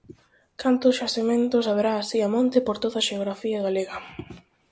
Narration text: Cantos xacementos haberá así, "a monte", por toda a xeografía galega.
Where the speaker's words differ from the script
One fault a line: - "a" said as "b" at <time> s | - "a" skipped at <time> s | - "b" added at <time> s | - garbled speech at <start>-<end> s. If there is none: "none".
none